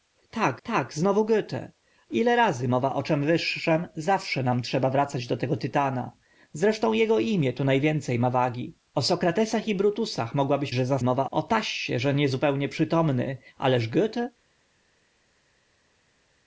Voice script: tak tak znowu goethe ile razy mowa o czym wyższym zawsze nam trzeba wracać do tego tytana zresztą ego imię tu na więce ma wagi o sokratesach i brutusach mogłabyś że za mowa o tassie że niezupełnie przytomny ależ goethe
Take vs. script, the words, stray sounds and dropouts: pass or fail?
pass